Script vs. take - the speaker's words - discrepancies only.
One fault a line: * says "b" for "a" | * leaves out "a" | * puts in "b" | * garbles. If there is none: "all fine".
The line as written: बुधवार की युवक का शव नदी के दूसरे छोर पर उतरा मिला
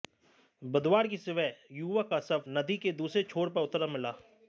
* puts in "सुबह"